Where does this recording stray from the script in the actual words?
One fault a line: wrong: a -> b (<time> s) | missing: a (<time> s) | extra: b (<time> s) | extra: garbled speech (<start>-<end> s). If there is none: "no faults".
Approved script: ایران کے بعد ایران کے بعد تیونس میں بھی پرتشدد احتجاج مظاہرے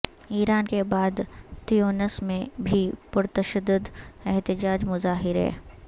missing: ایران کے بعد (1.2 s)